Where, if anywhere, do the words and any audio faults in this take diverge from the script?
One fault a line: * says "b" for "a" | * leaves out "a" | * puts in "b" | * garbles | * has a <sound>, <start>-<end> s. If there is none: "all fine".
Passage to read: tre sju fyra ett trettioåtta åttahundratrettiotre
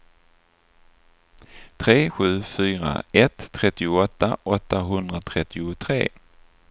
all fine